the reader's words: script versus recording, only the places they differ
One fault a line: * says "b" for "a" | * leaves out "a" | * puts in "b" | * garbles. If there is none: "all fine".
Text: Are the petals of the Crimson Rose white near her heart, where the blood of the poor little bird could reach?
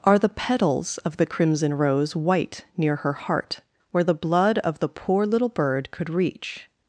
all fine